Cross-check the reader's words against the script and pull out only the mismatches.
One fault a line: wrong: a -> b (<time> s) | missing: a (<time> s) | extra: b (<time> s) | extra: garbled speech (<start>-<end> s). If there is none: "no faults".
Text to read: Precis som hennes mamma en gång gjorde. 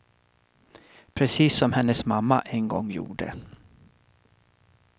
no faults